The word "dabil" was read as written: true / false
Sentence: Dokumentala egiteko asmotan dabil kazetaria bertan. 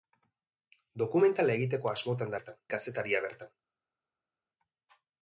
false